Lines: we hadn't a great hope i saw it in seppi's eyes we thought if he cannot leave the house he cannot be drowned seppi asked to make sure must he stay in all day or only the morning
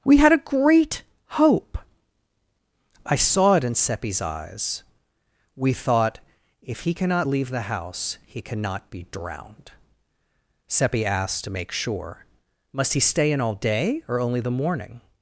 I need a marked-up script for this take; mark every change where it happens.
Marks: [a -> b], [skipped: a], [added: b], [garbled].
we [hadn't -> had] a great hope i saw it in seppi's eyes we thought if he cannot leave the house he cannot be drowned seppi asked to make sure must he stay in all day or only the morning